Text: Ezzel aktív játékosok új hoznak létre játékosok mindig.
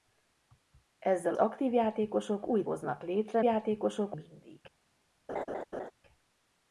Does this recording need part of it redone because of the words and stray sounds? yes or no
yes